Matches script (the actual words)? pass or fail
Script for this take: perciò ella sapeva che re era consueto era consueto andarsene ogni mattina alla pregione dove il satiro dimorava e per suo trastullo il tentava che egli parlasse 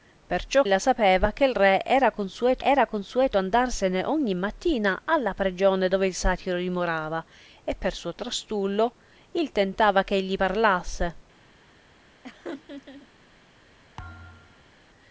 pass